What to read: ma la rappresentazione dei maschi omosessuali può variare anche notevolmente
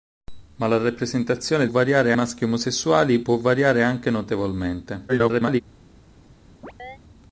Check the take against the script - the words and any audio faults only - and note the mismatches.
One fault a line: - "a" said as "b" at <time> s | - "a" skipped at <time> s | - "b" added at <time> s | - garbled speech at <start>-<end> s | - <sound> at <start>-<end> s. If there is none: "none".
- "dei" said as "variare" at 1.7 s
- garbled speech at 5.1-5.6 s
- chirp at 6.6-7.0 s